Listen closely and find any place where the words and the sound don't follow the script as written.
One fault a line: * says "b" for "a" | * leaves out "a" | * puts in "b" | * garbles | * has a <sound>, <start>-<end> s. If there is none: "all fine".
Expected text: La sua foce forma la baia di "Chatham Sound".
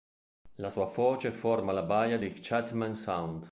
all fine